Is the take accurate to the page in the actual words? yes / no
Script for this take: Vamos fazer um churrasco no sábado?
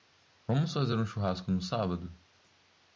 yes